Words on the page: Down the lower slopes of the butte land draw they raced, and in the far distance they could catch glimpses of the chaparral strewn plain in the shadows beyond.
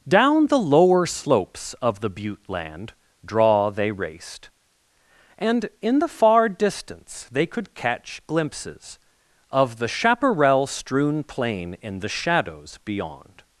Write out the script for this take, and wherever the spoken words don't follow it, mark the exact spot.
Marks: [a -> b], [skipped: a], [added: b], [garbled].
Down the lower slopes of the butte land draw they raced, and in the far distance they could catch glimpses of the chaparral strewn plain in the shadows beyond.